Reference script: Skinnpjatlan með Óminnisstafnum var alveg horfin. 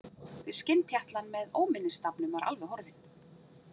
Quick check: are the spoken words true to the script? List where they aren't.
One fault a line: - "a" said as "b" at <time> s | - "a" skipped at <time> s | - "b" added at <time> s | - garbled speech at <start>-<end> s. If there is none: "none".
none